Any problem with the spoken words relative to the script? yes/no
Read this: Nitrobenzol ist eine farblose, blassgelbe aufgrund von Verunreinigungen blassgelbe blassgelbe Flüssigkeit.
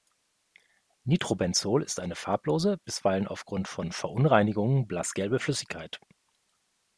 yes